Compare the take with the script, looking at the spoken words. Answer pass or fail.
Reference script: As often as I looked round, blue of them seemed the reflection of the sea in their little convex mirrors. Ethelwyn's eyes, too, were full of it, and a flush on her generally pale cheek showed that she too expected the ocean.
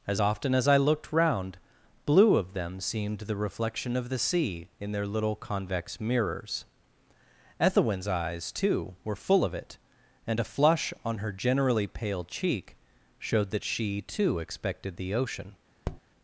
pass